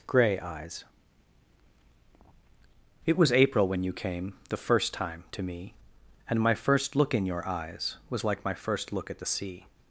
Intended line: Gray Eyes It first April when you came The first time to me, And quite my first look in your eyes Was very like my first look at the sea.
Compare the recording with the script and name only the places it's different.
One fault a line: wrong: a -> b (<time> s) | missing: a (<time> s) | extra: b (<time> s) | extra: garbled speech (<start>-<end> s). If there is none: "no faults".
wrong: first -> was (3.2 s)
missing: quite (6.4 s)
missing: very (8.2 s)